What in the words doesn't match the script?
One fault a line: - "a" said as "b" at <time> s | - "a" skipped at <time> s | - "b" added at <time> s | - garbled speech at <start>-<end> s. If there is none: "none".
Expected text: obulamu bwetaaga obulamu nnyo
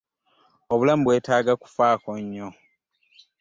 - "obulamu" said as "kufaako" at 1.6 s